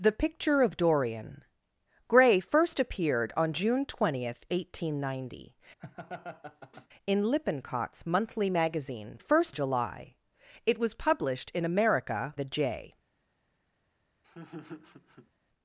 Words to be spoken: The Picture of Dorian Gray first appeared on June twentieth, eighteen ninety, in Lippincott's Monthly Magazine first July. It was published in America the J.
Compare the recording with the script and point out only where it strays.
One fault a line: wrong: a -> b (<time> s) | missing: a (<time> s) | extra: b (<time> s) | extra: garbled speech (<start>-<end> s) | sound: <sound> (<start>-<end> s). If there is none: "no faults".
sound: laugh (5.8-6.9 s)
sound: laugh (14.2-15.3 s)